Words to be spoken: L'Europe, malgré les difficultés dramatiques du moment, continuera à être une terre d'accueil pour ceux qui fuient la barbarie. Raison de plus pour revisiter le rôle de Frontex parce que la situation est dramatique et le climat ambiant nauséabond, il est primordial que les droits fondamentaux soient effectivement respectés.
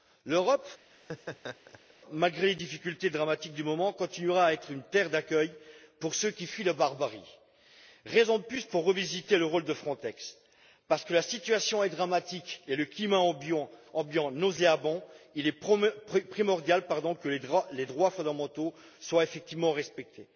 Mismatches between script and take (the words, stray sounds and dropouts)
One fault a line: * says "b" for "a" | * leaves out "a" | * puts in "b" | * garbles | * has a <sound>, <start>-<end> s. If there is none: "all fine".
* has a laugh, 0.9-1.9 s